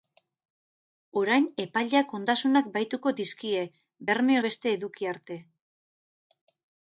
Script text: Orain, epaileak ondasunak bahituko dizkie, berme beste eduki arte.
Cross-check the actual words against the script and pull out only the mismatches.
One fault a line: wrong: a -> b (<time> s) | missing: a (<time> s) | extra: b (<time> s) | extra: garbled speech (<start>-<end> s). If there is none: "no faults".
no faults